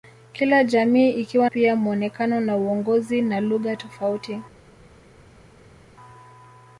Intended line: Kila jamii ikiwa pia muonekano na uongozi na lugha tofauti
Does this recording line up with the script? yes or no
yes